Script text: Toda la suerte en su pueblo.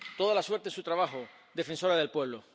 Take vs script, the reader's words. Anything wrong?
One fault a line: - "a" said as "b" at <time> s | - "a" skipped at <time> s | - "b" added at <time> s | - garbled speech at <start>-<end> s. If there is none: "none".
- "trabajo defensora del" added at 0.8 s